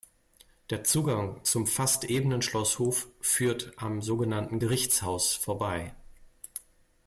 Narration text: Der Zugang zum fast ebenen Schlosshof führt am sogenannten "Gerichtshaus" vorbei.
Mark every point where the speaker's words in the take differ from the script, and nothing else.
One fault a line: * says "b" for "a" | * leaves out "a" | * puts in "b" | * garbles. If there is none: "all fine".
all fine